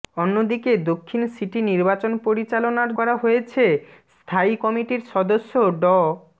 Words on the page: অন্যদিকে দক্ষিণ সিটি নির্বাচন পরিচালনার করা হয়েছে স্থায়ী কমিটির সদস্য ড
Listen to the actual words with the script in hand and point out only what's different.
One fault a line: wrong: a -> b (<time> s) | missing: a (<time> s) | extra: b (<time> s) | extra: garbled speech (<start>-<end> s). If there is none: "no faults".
no faults